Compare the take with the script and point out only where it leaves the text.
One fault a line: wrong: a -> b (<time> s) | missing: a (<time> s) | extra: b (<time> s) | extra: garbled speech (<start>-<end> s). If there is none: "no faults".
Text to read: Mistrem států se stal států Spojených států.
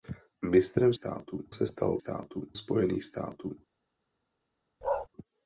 no faults